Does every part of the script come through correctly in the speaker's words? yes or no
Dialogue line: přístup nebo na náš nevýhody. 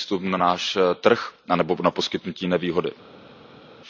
no